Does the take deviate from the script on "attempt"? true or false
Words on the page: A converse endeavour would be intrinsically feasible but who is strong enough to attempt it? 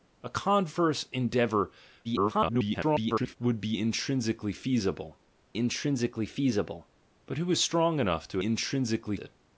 true